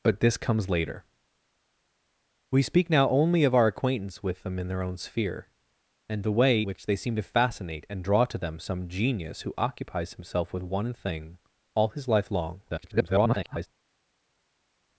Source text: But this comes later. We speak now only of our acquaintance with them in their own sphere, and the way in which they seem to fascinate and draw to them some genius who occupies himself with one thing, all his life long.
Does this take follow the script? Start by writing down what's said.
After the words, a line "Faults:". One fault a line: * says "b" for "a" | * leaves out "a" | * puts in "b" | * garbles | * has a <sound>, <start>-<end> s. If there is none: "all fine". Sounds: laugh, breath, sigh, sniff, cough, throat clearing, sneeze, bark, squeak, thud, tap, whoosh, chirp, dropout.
But this comes later. We speak now only of our acquaintance with them in their own sphere, and the way which they seem to fascinate and draw to them some genius who occupies himself with one thing, all his life long. [garbled]
Faults:
* leaves out "in"
* garbles